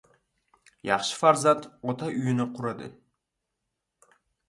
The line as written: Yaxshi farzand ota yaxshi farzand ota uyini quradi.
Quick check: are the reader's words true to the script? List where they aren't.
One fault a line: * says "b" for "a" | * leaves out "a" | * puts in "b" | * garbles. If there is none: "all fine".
* leaves out "yaxshi farzand ota"